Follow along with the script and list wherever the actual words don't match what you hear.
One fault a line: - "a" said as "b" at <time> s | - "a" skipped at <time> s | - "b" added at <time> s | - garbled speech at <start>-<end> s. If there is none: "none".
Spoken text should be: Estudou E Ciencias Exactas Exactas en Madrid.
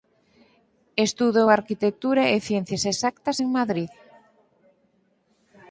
- "Arquitectura" added at 1.5 s
- "Exactas" skipped at 3.4 s